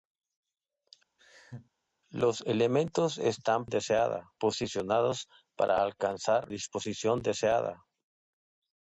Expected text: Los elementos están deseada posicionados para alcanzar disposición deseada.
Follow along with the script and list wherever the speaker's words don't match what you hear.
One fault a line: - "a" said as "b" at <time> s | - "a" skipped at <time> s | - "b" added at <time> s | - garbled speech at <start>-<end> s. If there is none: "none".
none